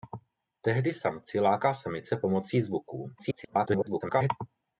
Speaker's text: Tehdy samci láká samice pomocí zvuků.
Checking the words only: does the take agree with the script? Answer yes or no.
no